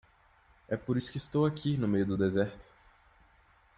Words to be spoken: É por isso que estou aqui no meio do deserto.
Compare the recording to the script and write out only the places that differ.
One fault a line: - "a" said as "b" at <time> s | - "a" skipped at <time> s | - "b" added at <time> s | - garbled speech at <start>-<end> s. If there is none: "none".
none